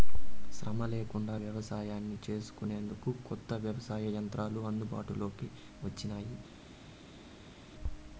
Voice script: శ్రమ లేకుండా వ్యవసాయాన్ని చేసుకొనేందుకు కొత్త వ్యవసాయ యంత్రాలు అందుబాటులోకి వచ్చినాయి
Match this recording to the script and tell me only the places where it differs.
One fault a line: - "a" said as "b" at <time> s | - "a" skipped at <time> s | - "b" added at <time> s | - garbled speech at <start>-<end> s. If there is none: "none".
none